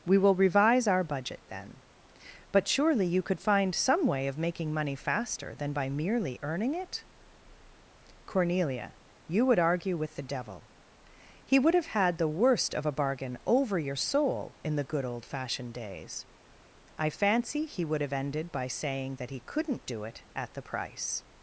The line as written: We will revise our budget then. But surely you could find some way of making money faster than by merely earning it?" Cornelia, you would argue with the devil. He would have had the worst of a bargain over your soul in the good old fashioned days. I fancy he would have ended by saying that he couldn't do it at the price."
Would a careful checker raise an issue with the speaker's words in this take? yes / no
no